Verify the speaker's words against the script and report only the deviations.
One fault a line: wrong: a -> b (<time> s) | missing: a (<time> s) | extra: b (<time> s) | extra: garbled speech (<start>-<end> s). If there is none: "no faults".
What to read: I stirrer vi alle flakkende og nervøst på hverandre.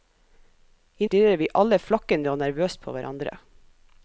no faults